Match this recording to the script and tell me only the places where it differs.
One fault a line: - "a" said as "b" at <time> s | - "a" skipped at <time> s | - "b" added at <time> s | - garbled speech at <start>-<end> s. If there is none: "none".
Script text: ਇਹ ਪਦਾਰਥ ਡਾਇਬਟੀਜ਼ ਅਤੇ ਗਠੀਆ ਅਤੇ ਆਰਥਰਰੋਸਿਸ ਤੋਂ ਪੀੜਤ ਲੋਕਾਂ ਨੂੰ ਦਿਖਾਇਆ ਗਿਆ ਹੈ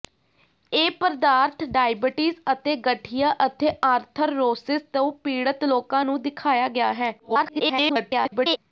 - garbled speech at 7.2-8.6 s